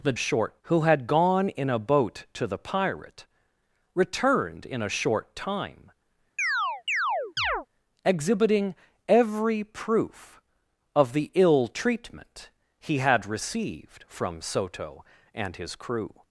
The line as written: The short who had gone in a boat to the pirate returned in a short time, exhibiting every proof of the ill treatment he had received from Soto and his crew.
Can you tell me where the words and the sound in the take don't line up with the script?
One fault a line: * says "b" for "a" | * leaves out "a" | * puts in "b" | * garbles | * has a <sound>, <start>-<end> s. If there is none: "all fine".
* has a chirp, 6.4-7.7 s